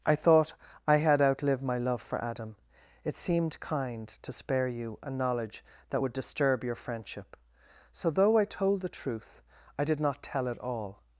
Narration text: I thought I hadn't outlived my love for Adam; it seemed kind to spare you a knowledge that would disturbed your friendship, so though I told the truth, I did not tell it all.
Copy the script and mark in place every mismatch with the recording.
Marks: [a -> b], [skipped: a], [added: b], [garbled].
I thought I [hadn't -> had] outlived my love for Adam; it seemed kind to spare you a knowledge that would [disturbed -> disturb] your friendship, so though I told the truth, I did not tell it all.